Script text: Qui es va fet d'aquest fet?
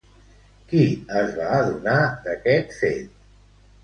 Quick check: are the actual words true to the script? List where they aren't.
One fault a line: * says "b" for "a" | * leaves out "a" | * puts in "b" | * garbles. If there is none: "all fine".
* says "adonar" for "fet"